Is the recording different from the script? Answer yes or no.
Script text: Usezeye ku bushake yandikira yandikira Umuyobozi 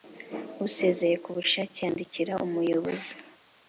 yes